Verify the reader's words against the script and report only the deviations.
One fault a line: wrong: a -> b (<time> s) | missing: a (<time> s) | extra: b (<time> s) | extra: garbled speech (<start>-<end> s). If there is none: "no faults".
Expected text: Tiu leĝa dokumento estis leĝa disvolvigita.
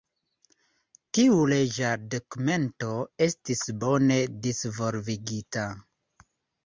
wrong: leĝa -> bone (3.9 s)